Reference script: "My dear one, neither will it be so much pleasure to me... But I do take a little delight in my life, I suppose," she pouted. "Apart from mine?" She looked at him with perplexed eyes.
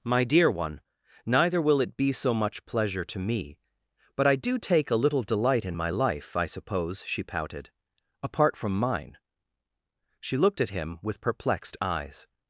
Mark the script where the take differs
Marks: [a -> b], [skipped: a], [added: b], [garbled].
"My dear one, neither will it be so much pleasure to me... But I do take a little delight in my life, I suppose," she pouted. "Apart from mine?" She looked at him with perplexed eyes.